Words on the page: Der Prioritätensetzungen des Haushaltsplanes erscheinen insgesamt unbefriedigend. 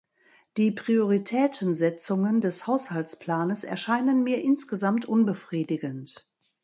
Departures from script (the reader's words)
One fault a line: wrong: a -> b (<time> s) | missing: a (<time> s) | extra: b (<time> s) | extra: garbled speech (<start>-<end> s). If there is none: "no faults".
wrong: Der -> Die (0.6 s)
extra: mir (4.2 s)